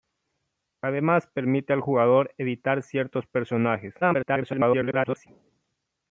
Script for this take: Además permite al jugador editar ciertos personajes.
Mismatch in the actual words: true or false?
true